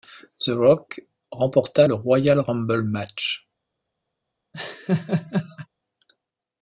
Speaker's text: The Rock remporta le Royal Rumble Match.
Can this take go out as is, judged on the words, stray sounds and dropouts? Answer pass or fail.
fail